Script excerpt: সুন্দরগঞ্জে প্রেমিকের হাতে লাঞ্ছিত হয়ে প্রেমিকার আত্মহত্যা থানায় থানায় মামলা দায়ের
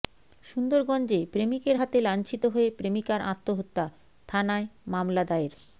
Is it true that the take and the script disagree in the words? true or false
true